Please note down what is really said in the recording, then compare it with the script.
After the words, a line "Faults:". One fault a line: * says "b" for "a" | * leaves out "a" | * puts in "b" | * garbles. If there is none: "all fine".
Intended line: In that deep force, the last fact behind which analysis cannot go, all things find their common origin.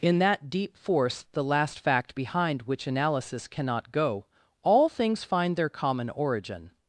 In that deep force, the last fact behind which analysis cannot go, all things find their common origin.
Faults:
all fine